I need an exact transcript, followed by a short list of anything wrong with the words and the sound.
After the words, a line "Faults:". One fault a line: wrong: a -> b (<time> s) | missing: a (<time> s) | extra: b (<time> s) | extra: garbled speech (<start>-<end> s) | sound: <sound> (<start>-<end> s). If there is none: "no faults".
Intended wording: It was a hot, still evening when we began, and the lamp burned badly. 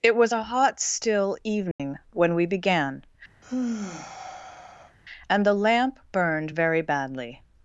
It was a hot, still evening when we began, and the lamp burned very badly.
Faults:
sound: dropout (1.7-1.8 s)
sound: sigh (3.4-5.0 s)
extra: very (6.5 s)